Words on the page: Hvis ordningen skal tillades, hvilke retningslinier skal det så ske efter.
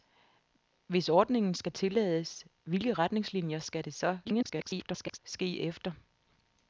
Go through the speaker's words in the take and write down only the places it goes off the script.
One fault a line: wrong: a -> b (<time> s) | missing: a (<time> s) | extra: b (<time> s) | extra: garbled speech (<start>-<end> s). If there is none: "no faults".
extra: garbled speech (4.2-5.2 s)